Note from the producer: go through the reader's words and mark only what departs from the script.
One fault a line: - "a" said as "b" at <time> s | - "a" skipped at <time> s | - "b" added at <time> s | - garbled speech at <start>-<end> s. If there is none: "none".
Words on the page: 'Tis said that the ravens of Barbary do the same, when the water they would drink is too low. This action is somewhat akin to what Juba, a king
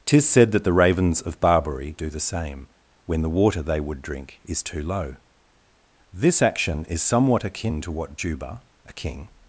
none